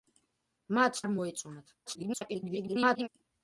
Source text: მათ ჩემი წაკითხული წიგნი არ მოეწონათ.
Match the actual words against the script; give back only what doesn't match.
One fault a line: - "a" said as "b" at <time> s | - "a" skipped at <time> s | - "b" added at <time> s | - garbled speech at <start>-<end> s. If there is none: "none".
- "ჩემი წაკითხული წიგნი" skipped at 1.0 s
- garbled speech at 1.9-3.1 s